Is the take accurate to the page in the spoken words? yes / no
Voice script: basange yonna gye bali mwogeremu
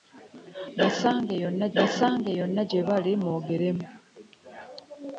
no